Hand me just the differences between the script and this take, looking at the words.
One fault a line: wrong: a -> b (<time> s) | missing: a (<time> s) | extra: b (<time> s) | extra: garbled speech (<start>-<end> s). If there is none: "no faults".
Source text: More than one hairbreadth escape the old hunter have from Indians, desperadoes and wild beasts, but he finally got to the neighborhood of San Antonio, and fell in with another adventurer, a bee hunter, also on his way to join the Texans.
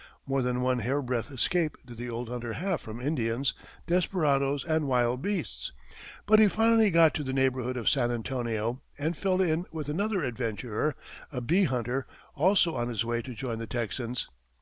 extra: did (1.9 s)